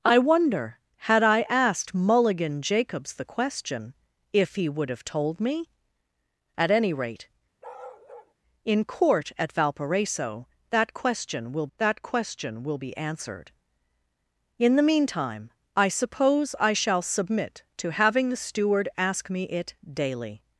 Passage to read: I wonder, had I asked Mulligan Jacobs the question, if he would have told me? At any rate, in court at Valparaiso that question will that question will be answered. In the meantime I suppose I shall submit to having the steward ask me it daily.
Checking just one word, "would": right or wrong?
right